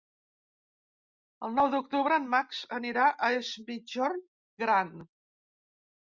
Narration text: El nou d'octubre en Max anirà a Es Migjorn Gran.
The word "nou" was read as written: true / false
true